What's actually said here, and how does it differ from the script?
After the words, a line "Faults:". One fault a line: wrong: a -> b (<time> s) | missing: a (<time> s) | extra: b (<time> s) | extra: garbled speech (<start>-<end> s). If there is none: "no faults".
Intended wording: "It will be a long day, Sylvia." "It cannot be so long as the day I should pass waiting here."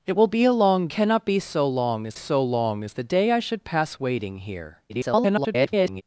"It will be a long cannot be so long as so long as the day I should pass waiting here." [garbled]
Faults:
wrong: day Sylvia It cannot be -> cannot be so long as (0.9 s)
extra: garbled speech (4.9-6.0 s)